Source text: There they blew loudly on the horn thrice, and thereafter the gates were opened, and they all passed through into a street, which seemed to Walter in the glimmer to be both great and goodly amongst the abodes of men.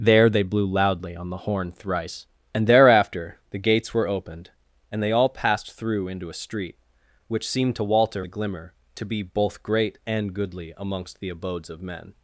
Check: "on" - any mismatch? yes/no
no